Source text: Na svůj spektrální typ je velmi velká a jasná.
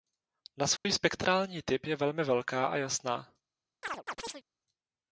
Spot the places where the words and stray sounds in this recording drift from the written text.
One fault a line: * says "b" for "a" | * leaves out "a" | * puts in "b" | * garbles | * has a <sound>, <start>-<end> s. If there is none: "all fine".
* has a dropout, 0.8-0.9 s
* has a chirp, 3.8-4.4 s